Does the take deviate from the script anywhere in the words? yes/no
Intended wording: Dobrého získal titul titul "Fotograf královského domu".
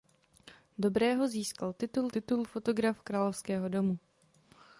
no